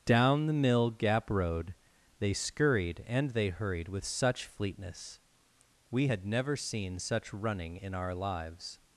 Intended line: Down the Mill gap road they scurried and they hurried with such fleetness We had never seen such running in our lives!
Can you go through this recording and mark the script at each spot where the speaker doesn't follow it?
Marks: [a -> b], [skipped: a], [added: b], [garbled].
Down the Mill gap road they scurried and they hurried with such fleetness We had never seen such running in our lives!